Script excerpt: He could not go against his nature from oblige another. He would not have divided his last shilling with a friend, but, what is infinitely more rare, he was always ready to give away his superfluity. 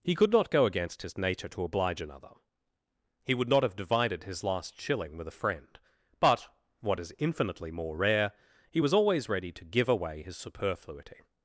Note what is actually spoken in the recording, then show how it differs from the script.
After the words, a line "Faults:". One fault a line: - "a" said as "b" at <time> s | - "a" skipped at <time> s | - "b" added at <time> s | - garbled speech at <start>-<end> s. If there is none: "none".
He could not go against his nature to oblige another. He would not have divided his last shilling with a friend, but, what is infinitely more rare, he was always ready to give away his superfluity.
Faults:
- "from" said as "to" at 1.5 s